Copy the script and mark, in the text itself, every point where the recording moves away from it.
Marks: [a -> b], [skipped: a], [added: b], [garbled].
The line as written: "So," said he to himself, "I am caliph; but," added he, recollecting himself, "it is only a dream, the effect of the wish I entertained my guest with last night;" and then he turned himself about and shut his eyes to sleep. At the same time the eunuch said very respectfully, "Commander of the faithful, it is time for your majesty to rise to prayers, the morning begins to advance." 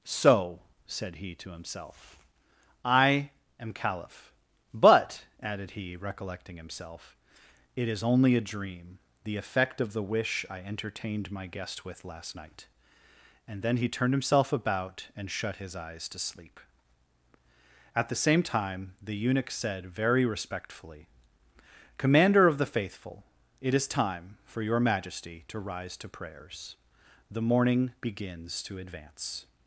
"So," said he to himself, "I am caliph; but," added he, recollecting himself, "it is only a dream, the effect of the wish I entertained my guest with last night;" and then he turned himself about and shut his eyes to sleep. At the same time the eunuch said very respectfully, "Commander of the faithful, it is time for your majesty to rise to prayers, the morning begins to advance."